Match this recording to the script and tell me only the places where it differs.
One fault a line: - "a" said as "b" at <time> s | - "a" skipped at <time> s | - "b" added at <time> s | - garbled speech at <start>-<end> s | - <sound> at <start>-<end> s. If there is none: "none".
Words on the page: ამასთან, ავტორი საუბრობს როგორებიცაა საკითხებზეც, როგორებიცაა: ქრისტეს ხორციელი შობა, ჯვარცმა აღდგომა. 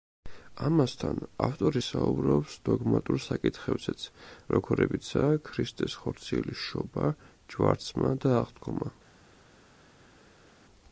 - "როგორებიცაა" said as "დოგმატურ" at 2.7 s
- "და" added at 8.3 s